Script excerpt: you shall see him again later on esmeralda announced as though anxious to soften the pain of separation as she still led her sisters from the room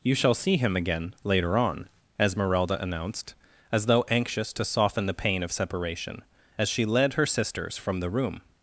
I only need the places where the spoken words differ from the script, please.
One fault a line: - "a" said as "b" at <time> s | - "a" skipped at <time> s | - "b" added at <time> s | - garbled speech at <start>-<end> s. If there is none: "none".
- "still" skipped at 6.8 s